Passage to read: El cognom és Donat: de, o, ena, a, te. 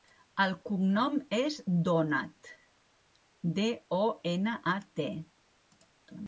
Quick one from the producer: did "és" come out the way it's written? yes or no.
yes